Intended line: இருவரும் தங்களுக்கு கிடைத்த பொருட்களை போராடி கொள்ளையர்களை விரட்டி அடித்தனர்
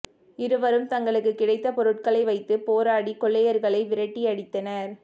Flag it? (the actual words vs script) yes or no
yes